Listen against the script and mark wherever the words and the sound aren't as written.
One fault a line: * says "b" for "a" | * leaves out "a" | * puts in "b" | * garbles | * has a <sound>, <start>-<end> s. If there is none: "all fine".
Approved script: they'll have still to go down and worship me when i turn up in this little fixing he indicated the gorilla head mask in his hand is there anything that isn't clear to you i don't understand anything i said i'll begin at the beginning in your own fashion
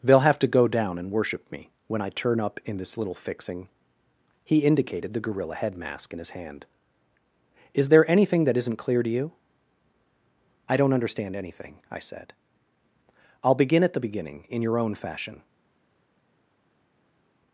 * leaves out "still"